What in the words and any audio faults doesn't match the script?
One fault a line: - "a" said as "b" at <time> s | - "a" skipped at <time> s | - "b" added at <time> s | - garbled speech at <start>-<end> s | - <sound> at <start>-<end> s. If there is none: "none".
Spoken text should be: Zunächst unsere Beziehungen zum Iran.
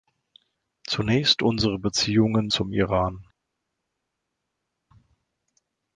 none